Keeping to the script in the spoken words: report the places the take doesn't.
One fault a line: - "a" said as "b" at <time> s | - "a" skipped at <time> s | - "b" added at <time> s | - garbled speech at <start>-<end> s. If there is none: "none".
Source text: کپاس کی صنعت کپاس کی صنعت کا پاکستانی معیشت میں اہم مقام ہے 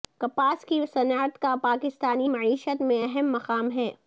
- "کپاس کی صنعت" skipped at 1.4 s